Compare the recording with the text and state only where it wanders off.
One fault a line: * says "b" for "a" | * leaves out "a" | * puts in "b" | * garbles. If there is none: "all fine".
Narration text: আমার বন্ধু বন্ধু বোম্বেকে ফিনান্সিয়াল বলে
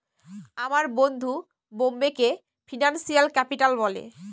* leaves out "বন্ধু"
* puts in "ক্যাপিটাল"